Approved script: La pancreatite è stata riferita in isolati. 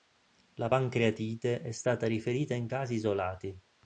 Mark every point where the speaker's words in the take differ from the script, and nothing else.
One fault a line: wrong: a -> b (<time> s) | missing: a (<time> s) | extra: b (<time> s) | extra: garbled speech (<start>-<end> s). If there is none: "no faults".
extra: casi (2.7 s)